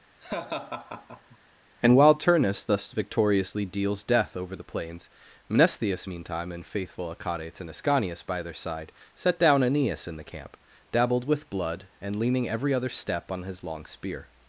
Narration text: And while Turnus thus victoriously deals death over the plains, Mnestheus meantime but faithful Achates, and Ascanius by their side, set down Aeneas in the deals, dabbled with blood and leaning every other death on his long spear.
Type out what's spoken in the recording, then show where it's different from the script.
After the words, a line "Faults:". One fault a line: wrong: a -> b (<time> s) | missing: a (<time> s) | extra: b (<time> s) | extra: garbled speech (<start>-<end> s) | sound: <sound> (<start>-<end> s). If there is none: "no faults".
And while Turnus thus victoriously deals death over the plains, Mnestheus meantime and faithful Achates, and Ascanius by their side, set down Aeneas in the camp, dabbled with blood and leaning every other step on his long spear.
Faults:
sound: laugh (0.2-1.4 s)
wrong: but -> and (6.5 s)
wrong: deals -> camp (10.2 s)
wrong: death -> step (12.9 s)